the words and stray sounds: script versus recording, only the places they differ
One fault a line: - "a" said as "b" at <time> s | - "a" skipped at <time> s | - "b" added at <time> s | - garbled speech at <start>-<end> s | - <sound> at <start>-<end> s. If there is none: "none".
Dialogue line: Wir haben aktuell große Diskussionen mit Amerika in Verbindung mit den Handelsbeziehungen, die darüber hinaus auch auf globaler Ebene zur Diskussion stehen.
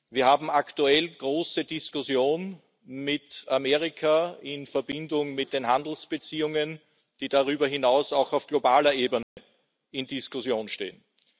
- dropout at 9.2-9.4 s